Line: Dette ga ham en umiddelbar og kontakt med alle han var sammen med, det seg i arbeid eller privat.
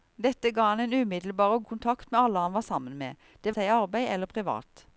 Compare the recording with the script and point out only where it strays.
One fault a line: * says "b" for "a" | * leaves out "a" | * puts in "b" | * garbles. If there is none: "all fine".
all fine